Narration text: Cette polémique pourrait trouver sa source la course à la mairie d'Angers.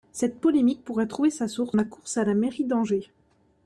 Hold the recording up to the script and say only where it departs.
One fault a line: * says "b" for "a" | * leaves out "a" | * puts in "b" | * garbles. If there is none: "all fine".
all fine